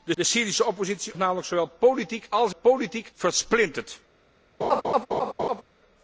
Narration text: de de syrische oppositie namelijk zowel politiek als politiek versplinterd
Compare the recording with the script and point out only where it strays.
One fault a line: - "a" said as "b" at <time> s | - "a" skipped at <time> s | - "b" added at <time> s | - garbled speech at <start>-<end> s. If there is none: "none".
none